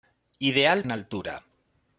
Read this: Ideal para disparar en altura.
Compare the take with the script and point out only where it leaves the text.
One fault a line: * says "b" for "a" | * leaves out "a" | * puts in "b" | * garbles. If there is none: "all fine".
* leaves out "para disparar"